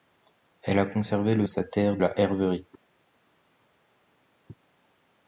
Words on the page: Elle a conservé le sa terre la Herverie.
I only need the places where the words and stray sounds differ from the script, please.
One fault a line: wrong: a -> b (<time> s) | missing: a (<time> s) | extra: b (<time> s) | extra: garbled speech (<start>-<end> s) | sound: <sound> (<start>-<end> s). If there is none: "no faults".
no faults